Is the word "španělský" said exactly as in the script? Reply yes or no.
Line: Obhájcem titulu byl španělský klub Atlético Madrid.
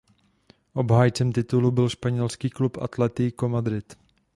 yes